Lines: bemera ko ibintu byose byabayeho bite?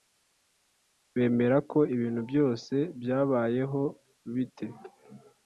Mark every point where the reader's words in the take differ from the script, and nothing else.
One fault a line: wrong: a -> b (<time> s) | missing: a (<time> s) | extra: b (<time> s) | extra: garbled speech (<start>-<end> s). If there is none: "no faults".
no faults